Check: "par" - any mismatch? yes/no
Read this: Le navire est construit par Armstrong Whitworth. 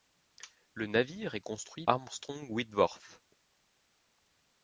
yes